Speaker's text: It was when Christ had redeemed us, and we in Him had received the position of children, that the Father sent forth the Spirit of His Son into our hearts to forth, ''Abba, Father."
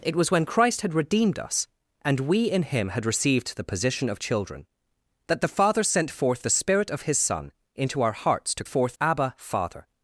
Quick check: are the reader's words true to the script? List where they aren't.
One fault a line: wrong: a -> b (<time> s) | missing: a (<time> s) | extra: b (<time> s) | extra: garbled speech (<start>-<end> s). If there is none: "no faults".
no faults